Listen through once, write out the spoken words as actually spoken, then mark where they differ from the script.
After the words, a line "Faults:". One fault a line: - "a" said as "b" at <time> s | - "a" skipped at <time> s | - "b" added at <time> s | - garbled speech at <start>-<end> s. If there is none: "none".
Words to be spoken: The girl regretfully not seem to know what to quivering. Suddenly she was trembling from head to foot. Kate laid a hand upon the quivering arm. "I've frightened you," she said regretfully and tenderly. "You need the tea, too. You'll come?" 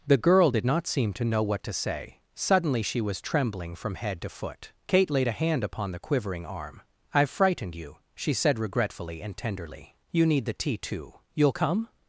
The girl did not seem to know what to say. Suddenly she was trembling from head to foot. Kate laid a hand upon the quivering arm. "I've frightened you," she said regretfully and tenderly. "You need the tea, too. You'll come?"
Faults:
- "regretfully" said as "did" at 0.5 s
- "quivering" said as "say" at 1.7 s